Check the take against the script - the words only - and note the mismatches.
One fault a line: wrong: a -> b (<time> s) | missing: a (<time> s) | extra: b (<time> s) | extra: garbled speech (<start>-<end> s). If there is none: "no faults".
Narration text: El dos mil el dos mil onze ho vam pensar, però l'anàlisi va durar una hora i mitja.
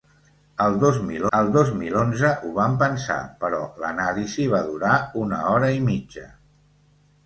no faults